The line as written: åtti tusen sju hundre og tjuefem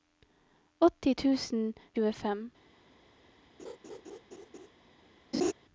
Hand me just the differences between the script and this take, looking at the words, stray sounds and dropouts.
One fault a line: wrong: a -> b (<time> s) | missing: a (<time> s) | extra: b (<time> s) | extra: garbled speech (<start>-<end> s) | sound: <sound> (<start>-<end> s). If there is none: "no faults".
missing: sju hundre og (1.7 s)
sound: laugh (3.6-4.7 s)
sound: laugh (5.3-5.5 s)